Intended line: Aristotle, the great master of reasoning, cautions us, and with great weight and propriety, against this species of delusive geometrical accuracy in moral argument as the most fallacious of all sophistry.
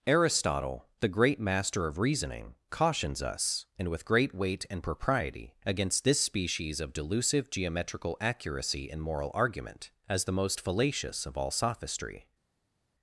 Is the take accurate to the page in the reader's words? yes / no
yes